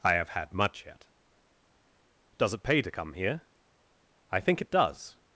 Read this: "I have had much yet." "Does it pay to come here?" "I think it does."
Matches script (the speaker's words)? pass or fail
pass